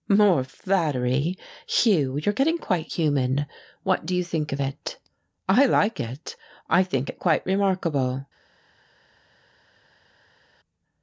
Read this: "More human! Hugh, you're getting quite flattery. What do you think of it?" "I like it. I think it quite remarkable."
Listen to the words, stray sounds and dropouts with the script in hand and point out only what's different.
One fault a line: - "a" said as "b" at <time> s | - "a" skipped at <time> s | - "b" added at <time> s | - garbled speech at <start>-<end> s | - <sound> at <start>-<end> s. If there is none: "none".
- "human" said as "flattery" at 0.4 s
- "flattery" said as "human" at 2.8 s